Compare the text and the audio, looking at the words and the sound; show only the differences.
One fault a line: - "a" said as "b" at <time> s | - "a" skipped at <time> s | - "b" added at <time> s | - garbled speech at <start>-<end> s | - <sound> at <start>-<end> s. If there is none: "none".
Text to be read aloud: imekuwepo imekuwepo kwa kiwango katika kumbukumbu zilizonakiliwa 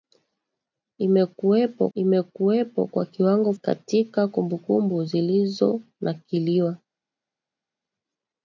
none